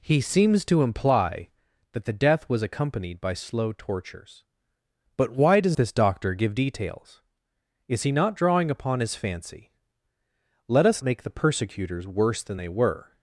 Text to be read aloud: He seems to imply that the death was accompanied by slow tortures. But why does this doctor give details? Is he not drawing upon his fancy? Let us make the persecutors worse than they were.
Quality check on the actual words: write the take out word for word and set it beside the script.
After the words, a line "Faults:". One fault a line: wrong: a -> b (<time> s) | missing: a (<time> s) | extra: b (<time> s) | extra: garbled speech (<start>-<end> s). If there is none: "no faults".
He seems to imply that the death was accompanied by slow tortures. But why does this doctor give details? Is he not drawing upon his fancy? Let us make the persecutors worse than they were.
Faults:
no faults